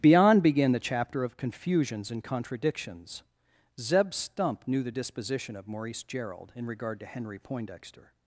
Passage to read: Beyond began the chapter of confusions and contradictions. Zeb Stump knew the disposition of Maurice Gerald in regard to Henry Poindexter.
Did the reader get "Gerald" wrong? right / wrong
right